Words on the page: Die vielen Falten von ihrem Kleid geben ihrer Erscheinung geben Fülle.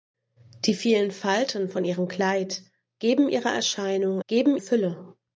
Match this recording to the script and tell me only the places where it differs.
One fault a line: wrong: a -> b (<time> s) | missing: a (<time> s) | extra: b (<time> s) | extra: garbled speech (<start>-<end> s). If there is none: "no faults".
no faults